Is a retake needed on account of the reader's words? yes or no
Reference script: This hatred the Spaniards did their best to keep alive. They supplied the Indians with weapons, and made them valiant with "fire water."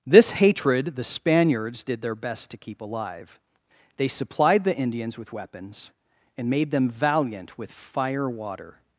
no